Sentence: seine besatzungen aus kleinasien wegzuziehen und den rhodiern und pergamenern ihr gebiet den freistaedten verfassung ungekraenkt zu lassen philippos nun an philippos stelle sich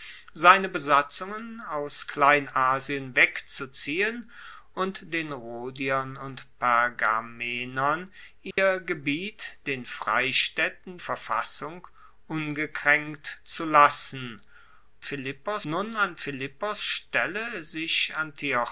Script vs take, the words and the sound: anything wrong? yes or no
yes